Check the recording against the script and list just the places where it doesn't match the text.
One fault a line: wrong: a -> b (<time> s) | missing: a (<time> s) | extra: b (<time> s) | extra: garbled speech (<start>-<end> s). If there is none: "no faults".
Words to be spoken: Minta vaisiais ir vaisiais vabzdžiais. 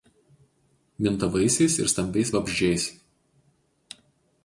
wrong: vaisiais -> stambiais (1.9 s)